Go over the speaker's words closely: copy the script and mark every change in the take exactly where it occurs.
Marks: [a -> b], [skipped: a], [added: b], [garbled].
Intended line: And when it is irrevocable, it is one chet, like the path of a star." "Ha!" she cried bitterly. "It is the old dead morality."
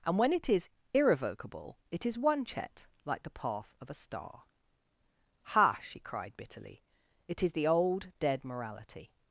And when it is irrevocable, it is one chet, like the path of a star." "Ha!" she cried bitterly. "It is the old dead morality."